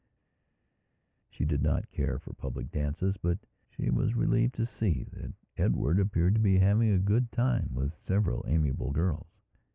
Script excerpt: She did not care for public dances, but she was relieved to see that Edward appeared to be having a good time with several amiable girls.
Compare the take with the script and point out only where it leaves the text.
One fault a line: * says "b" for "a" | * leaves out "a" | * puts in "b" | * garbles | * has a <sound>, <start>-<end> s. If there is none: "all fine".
all fine